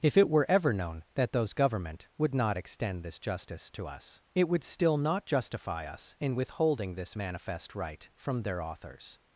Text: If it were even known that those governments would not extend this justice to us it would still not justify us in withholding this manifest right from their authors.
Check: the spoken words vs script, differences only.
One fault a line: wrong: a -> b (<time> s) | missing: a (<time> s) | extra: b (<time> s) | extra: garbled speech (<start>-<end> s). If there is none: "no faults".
wrong: even -> ever (0.5 s)
wrong: governments -> government (1.5 s)